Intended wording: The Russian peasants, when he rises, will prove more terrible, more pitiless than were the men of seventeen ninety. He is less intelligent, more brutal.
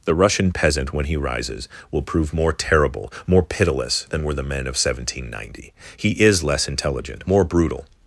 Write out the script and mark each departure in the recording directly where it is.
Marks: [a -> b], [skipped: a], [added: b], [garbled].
The Russian [peasants, -> peasant] when he rises, will prove more terrible, more pitiless than were the men of seventeen ninety. He is less intelligent, more brutal.